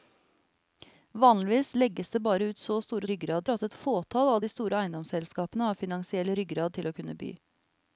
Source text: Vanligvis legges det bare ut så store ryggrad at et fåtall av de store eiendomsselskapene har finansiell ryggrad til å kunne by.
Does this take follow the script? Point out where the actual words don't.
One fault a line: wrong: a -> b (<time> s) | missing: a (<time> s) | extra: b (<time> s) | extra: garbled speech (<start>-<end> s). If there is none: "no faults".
no faults